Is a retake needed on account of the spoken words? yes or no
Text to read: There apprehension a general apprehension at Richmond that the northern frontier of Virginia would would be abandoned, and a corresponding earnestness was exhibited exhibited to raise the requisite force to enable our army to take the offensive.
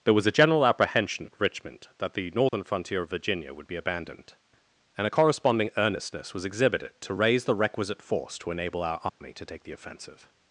yes